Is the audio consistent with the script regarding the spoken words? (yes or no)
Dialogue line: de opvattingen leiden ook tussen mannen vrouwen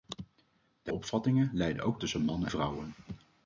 yes